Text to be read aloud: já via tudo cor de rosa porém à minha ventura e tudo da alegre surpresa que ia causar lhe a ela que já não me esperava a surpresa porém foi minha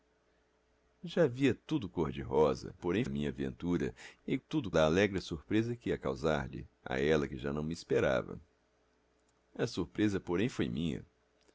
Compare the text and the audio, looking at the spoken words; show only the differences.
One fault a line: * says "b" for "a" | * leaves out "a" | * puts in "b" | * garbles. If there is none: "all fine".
all fine